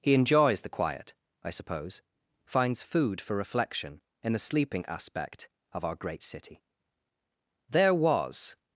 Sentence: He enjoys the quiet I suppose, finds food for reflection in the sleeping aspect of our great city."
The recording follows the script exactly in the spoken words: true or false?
false